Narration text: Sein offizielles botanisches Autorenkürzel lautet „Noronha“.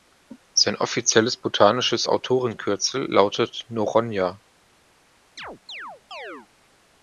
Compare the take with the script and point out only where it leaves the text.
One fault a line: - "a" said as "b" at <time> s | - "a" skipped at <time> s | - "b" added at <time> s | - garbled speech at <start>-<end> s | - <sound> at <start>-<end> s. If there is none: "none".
- chirp at 5.4-6.5 s